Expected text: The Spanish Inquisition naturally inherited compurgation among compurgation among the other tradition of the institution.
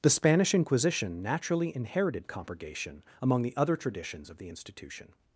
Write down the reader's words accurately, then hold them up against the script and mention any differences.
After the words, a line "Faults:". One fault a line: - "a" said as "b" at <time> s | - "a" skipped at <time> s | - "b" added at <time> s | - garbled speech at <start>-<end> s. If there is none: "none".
The Spanish Inquisition naturally inherited compurgation among the other traditions of the institution.
Faults:
- "compurgation among" skipped at 3.4 s
- "tradition" said as "traditions" at 3.7 s